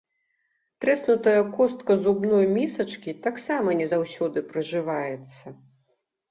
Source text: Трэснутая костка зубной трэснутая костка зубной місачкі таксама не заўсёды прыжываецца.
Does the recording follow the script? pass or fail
fail